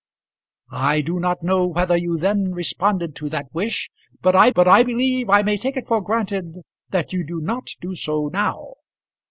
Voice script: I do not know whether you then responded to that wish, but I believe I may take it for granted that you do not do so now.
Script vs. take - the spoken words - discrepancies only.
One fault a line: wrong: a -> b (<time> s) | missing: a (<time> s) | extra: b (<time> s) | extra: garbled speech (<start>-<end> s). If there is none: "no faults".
extra: but I (4.5 s)